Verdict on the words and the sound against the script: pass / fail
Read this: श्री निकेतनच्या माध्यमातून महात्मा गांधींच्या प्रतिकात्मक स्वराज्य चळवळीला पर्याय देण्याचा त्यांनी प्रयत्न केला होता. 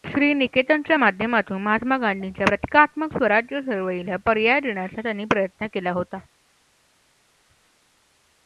pass